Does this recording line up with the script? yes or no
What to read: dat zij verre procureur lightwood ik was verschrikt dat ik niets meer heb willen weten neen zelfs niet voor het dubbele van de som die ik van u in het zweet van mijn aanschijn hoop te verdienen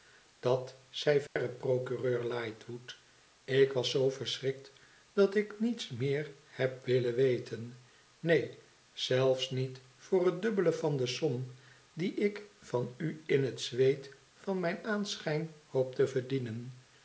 no